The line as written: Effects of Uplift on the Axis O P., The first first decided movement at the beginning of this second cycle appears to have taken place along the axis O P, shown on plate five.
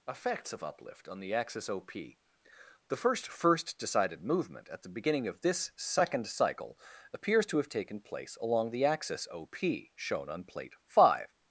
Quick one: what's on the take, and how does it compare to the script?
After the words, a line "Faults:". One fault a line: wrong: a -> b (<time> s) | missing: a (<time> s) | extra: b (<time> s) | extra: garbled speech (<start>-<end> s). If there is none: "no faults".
Effects of Uplift on the Axis O P., The first first decided movement at the beginning of this second cycle appears to have taken place along the axis O P, shown on plate five.
Faults:
no faults